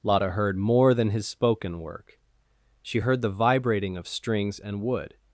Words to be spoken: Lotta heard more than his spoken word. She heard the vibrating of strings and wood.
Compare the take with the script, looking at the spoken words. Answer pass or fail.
fail